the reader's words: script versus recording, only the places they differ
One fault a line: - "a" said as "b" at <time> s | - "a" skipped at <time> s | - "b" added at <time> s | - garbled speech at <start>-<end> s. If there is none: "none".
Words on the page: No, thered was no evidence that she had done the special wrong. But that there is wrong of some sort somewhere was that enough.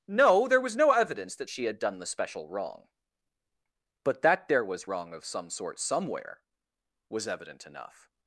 - "thered" said as "there" at 0.5 s
- "is" said as "was" at 4.6 s
- "that" said as "evident" at 7.3 s